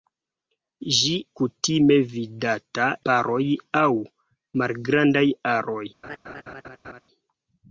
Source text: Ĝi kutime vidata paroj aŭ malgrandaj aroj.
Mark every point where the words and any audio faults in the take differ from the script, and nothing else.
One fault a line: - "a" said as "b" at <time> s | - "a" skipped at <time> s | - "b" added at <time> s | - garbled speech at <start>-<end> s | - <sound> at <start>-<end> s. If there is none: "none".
- laugh at 6.0-7.0 s